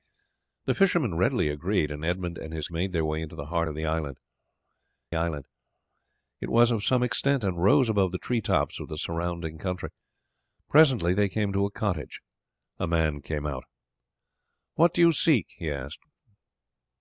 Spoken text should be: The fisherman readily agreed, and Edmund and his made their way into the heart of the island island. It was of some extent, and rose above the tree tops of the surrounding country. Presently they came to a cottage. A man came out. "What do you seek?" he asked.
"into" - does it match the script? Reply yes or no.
yes